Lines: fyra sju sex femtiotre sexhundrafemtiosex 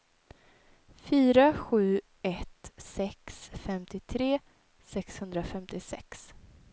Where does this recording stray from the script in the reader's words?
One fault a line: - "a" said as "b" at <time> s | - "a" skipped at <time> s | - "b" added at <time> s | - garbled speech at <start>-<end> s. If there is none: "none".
- "ett" added at 2.2 s